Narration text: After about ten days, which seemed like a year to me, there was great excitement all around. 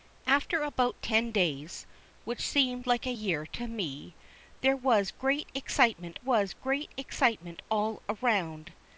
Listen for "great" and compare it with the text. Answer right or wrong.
right